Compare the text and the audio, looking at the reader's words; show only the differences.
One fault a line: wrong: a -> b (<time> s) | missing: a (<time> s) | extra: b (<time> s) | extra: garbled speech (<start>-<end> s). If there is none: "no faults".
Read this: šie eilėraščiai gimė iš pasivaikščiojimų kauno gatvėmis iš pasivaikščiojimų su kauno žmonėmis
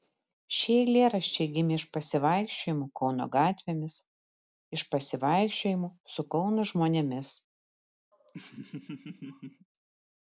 no faults